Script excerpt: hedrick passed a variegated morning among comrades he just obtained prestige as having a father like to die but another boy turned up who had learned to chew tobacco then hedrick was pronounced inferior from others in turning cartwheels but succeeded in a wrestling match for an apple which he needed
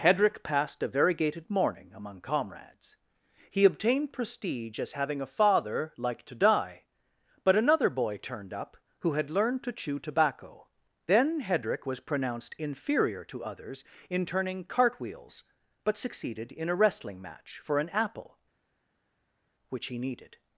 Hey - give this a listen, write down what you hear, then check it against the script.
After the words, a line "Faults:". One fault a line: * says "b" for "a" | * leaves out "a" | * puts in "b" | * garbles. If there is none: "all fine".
hedrick passed a variegated morning among comrades he obtained prestige as having a father like to die but another boy turned up who had learned to chew tobacco then hedrick was pronounced inferior to others in turning cartwheels but succeeded in a wrestling match for an apple which he needed
Faults:
* leaves out "just"
* says "to" for "from"